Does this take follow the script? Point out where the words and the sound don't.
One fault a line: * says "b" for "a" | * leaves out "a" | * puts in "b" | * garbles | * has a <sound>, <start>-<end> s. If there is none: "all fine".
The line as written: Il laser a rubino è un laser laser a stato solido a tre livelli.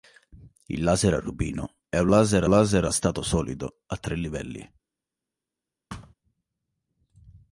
* has a thud, 5.9-6.1 s